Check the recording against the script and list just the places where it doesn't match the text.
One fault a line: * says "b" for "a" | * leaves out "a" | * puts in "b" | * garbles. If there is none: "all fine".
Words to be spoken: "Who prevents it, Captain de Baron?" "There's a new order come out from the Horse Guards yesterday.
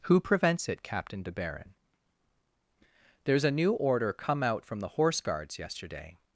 all fine